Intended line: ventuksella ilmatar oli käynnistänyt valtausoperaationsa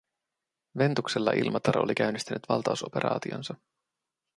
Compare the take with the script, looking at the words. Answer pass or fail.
pass